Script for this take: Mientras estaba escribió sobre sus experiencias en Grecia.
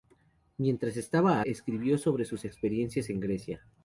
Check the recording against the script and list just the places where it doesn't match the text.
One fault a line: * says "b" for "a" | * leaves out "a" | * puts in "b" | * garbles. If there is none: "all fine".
all fine